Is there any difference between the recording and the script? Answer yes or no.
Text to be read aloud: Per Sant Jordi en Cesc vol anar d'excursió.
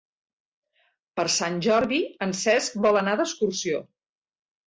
no